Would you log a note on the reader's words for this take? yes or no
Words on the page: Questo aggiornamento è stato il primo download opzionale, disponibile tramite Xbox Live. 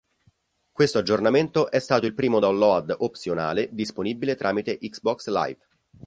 no